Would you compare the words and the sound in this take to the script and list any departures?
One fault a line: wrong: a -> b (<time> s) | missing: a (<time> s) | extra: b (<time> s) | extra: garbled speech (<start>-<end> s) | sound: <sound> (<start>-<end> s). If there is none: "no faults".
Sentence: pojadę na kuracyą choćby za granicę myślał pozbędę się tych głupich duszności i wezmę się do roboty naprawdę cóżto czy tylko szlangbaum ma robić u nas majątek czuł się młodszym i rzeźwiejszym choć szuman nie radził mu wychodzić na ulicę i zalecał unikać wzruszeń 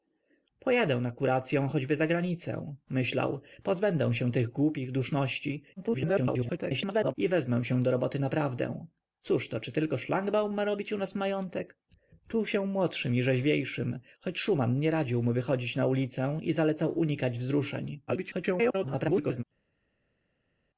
extra: garbled speech (5.8-7.1 s)
extra: garbled speech (18.1-19.4 s)